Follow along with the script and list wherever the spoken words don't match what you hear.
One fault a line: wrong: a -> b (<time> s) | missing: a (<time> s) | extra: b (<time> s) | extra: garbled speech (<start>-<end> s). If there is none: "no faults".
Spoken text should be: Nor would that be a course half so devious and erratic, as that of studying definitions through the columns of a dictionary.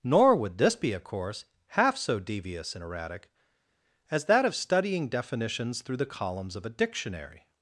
wrong: that -> this (0.6 s)